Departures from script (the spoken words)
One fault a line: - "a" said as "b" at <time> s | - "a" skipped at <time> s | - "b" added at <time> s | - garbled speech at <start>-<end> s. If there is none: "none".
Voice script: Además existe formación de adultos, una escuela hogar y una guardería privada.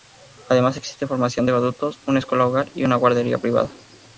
none